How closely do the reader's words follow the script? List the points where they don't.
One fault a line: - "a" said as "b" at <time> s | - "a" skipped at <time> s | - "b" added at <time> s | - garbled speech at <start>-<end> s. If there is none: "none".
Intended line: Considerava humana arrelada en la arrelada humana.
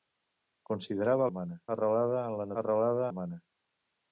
none